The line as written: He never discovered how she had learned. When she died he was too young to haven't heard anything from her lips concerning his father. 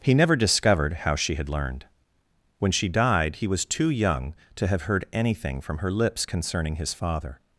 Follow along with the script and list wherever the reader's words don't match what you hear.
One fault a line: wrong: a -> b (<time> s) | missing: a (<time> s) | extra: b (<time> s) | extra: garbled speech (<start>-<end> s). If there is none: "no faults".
wrong: haven't -> have (4.7 s)